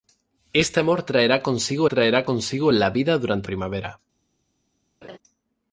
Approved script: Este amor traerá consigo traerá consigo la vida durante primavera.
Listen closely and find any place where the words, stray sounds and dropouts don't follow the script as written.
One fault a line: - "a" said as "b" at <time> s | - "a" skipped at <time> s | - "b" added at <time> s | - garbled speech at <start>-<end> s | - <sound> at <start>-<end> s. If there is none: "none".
- laugh at 5.0-5.2 s